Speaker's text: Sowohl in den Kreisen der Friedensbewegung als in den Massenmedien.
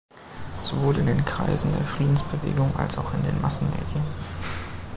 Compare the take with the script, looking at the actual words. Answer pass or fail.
fail